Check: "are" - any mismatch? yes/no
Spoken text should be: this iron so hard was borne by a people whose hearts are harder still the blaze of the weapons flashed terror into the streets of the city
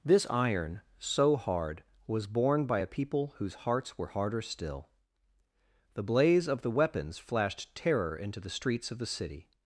yes